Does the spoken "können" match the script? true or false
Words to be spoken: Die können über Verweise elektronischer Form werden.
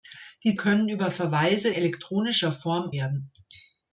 true